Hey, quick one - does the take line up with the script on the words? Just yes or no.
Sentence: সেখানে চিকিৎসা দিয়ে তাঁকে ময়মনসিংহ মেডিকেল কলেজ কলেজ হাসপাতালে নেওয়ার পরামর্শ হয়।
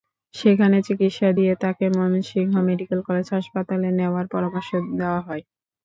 no